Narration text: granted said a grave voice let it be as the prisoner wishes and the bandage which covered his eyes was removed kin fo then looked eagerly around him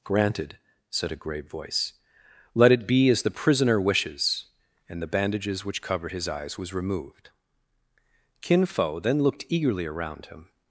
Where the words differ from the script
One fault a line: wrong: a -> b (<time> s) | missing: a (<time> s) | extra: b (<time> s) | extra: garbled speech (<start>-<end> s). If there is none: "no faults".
wrong: bandage -> bandages (5.1 s)